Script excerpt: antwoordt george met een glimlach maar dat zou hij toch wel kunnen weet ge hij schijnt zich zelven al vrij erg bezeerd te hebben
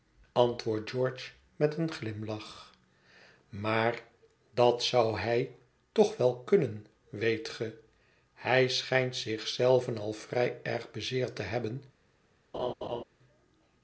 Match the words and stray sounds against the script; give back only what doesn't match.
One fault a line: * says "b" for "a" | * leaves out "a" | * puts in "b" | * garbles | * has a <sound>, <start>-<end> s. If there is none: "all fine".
* has a laugh, 12.5-13.0 s